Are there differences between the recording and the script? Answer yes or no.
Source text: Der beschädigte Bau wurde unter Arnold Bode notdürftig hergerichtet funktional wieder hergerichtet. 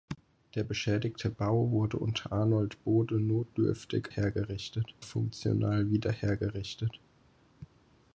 no